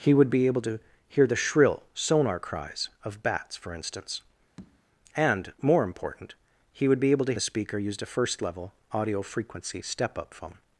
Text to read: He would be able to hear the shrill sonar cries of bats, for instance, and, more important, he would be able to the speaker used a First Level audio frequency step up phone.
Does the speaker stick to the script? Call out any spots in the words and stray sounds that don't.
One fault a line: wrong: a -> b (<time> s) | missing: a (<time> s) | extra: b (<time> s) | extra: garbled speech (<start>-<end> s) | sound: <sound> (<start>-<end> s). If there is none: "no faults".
sound: tap (4.6-4.8 s)